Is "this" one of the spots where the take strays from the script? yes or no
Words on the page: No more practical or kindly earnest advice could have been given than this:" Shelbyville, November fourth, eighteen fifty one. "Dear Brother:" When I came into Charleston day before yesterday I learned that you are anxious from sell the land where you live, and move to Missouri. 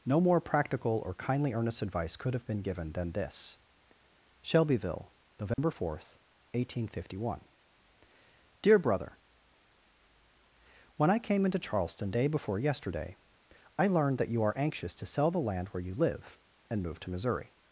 no